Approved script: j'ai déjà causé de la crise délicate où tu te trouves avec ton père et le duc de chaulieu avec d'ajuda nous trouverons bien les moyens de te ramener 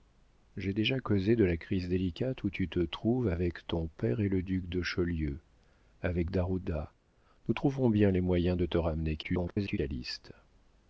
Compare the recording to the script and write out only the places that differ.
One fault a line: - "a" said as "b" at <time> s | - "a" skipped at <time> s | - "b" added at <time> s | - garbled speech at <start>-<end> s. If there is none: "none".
- garbled speech at 9.2-9.8 s